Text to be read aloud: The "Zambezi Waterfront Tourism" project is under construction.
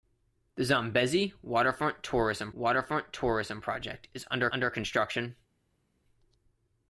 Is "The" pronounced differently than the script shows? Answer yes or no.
no